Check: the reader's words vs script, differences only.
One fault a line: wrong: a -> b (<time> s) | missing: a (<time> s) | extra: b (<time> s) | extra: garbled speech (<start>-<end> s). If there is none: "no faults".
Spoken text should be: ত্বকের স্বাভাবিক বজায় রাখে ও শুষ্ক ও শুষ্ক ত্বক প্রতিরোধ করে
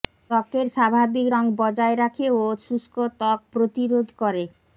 extra: রং (1.3 s)
missing: ও শুষ্ক (3.0 s)